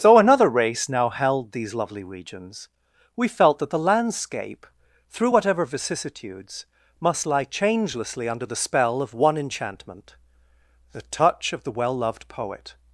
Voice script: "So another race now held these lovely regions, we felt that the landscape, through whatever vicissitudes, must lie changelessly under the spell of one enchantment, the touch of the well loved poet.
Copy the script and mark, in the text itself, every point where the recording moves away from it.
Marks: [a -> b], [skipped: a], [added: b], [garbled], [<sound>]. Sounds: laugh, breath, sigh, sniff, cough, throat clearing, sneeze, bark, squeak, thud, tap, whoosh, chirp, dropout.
"So another race now held these lovely regions, we felt that the landscape, through whatever vicissitudes, must lie changelessly under the spell of one enchantment, the touch of the well loved poet.